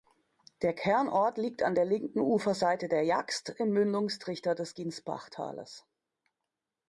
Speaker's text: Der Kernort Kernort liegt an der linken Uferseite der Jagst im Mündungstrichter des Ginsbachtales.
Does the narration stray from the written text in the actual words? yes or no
yes